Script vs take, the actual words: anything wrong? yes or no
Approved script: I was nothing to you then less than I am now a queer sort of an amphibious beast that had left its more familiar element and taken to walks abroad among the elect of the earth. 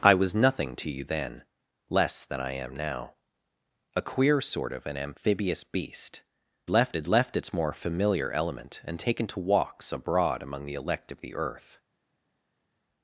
yes